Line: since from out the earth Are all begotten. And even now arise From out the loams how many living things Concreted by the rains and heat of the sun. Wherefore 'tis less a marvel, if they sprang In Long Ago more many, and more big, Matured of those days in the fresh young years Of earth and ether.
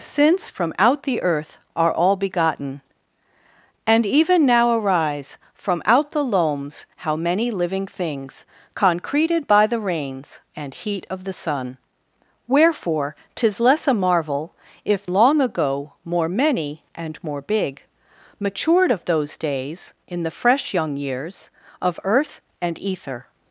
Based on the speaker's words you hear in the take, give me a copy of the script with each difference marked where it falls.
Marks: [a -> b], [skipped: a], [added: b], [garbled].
since from out the earth Are all begotten. And even now arise From out the loams how many living things Concreted by the rains and heat of the sun. Wherefore 'tis less a marvel, if [skipped: they sprang In] Long Ago more many, and more big, Matured of those days in the fresh young years Of earth and ether.